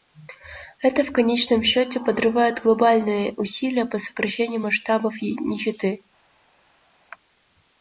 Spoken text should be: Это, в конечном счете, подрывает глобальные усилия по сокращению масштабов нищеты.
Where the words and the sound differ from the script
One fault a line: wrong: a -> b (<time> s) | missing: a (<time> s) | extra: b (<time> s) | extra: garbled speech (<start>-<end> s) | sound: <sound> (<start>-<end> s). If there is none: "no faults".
no faults